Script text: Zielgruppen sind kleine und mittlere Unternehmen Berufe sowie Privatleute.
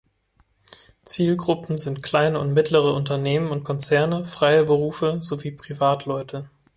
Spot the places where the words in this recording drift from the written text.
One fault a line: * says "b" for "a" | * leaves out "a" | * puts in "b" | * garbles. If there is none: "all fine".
* puts in "und Konzerne freie"